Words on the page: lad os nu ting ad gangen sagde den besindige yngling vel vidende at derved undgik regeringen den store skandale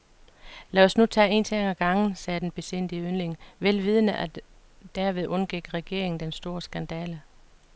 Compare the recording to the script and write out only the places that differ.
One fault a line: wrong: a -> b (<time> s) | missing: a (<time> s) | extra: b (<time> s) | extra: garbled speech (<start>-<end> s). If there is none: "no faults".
extra: tage en (1.1 s)